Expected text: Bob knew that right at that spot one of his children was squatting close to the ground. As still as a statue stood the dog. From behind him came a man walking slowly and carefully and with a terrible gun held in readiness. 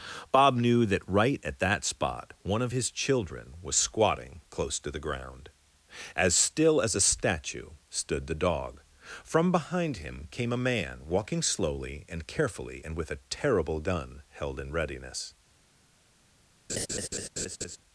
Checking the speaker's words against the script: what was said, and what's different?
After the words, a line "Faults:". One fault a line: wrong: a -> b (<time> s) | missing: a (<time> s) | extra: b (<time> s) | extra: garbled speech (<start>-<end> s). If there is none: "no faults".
Bob knew that right at that spot one of his children was squatting close to the ground. As still as a statue stood the dog. From behind him came a man walking slowly and carefully and with a terrible gun held in readiness.
Faults:
no faults